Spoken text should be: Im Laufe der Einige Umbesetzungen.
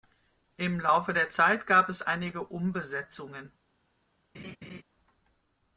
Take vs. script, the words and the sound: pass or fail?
fail